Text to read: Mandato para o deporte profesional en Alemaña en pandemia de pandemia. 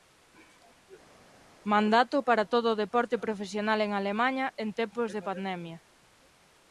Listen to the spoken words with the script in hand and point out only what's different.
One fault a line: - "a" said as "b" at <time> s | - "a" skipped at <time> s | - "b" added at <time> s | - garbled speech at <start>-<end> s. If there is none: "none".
- "todo" added at 2.5 s
- "pandemia" said as "tempos" at 4.8 s